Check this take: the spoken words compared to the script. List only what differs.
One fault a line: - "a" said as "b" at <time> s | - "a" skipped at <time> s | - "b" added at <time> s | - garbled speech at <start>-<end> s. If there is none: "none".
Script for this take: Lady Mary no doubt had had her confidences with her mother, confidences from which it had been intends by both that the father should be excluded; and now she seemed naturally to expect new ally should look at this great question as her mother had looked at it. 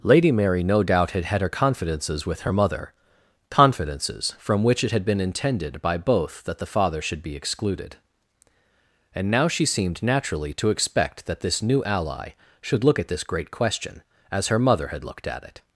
- "intends" said as "intended" at 5.2 s
- "that this" added at 11.3 s